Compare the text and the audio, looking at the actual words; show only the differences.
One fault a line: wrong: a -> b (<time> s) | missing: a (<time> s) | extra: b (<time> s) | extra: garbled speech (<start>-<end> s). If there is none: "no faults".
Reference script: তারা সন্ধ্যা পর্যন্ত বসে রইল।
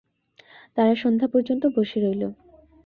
no faults